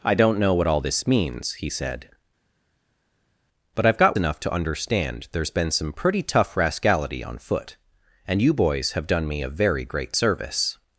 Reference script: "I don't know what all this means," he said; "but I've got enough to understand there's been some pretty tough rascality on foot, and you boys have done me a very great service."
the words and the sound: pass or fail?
pass